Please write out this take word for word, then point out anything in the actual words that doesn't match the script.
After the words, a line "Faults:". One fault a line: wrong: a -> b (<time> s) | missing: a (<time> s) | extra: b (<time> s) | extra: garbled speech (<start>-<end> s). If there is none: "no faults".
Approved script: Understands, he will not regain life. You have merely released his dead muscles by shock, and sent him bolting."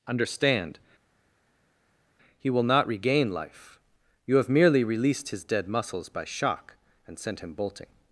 Understand, he will not regain life. You have merely released his dead muscles by shock, and sent him bolting."
Faults:
wrong: Understands -> Understand (0.1 s)